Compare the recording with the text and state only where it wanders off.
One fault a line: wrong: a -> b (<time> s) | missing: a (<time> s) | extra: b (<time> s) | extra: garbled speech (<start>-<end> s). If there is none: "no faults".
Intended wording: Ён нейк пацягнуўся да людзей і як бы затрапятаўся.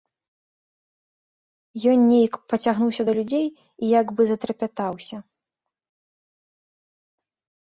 no faults